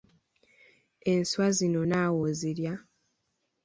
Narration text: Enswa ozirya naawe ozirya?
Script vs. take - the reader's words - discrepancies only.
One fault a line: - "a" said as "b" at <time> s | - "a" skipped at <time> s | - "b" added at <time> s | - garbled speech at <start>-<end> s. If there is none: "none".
- "ozirya" said as "zino" at 1.6 s